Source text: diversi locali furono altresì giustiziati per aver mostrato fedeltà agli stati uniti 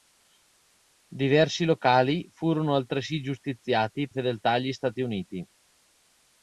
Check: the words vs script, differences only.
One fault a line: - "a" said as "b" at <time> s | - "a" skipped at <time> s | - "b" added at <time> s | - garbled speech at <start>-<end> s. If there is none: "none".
- "per aver mostrato" skipped at 4.1 s